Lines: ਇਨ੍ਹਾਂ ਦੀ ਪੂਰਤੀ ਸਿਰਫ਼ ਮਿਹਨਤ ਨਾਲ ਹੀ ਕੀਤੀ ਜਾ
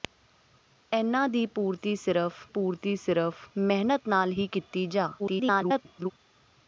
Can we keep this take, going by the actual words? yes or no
no